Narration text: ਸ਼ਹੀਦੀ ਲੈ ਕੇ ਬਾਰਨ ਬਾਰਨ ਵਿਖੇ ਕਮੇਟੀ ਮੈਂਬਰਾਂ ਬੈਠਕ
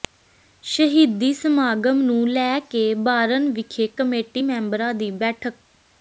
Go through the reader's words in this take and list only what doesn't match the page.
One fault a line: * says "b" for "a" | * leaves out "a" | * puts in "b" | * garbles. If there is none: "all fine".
* puts in "ਸਮਾਗਮ ਨੂੰ"
* leaves out "ਬਾਰਨ"
* puts in "ਦੀ"